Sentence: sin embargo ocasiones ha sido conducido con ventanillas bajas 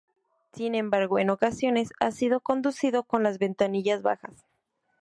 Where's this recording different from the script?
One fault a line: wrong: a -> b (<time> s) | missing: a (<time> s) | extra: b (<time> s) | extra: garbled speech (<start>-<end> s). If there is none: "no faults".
extra: en (1.2 s)
extra: las (3.2 s)